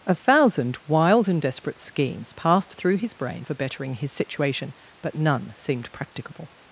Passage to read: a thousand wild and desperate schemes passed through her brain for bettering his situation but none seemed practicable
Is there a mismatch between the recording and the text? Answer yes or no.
yes